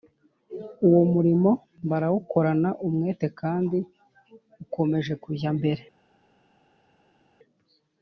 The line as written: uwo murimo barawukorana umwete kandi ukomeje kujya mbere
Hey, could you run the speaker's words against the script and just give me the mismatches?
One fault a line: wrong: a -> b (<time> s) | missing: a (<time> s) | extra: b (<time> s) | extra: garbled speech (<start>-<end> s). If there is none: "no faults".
no faults